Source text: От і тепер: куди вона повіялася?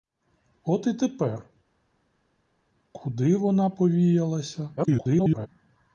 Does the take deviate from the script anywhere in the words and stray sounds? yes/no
yes